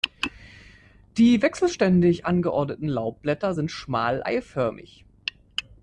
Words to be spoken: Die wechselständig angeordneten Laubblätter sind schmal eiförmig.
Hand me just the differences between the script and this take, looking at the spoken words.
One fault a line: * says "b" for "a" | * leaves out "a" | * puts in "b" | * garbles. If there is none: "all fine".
all fine